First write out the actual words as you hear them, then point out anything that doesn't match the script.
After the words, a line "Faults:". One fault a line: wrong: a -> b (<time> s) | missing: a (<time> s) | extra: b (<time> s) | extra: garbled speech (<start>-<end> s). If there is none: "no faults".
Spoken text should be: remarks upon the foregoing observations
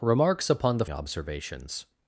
remarks upon the observations
Faults:
missing: foregoing (0.8 s)